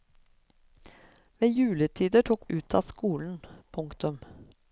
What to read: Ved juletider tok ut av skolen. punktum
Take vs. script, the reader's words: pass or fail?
pass